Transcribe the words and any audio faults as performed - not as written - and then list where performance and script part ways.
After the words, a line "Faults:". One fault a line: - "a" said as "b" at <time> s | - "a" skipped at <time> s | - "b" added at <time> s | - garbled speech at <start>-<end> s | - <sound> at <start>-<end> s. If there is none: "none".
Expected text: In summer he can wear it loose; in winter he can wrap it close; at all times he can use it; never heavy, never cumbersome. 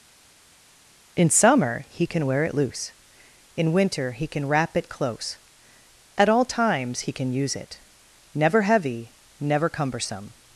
In summer he can wear it loose; in winter he can wrap it close; at all times he can use it; never heavy, never cumbersome.
Faults:
none